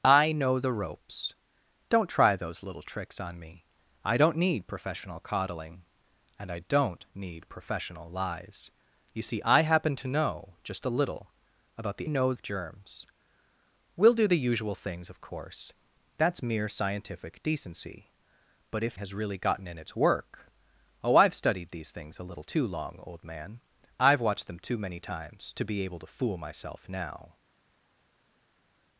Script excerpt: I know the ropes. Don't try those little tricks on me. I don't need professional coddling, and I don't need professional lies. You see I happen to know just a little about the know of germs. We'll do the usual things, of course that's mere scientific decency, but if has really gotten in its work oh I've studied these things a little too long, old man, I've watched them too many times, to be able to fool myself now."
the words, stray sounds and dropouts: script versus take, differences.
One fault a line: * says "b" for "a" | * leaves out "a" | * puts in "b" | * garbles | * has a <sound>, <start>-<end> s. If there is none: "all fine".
all fine